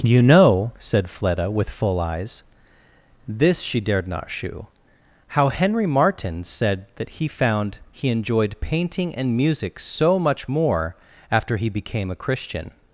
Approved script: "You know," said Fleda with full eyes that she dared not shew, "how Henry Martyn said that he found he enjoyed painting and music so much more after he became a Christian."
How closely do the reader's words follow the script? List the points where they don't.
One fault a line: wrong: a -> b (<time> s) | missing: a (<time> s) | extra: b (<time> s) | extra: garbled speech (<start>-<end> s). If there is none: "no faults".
wrong: that -> this (3.3 s)